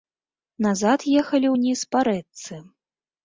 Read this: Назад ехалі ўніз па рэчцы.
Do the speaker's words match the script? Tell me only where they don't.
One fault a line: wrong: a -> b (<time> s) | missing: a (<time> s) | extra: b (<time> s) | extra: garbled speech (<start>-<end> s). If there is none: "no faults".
no faults